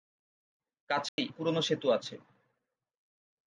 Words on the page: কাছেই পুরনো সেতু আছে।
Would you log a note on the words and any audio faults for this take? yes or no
yes